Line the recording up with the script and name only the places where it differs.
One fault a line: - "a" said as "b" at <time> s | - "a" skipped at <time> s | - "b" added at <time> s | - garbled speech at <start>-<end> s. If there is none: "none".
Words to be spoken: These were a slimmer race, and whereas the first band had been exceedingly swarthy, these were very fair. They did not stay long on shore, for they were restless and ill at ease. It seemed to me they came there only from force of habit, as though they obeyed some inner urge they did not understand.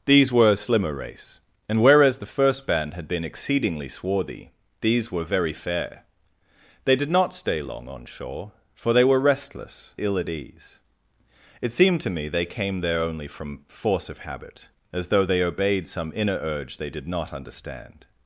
- "and" skipped at 9.9 s